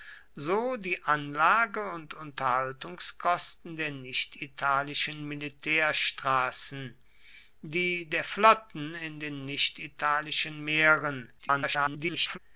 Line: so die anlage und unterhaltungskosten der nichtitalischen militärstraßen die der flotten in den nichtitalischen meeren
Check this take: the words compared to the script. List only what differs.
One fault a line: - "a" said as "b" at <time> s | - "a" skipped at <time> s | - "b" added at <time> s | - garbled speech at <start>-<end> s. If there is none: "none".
- garbled speech at 11.4-12.4 s